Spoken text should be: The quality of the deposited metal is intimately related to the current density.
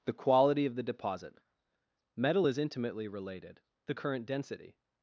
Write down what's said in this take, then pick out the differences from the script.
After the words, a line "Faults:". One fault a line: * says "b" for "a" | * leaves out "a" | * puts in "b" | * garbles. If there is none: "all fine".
The quality of the deposit metal is intimately related the current density.
Faults:
* says "deposit" for "deposited"
* leaves out "to"